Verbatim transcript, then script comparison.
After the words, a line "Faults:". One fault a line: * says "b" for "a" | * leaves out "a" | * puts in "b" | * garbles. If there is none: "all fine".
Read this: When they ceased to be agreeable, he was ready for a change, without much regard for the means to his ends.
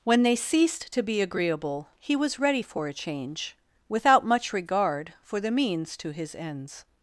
When they ceased to be agreeable, he was ready for a change, without much regard for the means to his ends.
Faults:
all fine